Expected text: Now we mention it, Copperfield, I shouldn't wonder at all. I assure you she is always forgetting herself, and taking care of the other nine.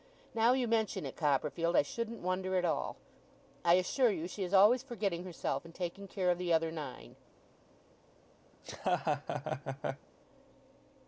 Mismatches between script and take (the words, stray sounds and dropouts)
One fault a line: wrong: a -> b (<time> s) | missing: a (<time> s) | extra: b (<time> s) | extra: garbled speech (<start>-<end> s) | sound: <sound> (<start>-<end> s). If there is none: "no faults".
wrong: we -> you (0.5 s)
sound: laugh (8.5-10.1 s)